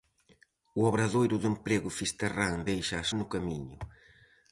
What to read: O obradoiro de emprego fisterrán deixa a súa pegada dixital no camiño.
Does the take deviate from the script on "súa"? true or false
true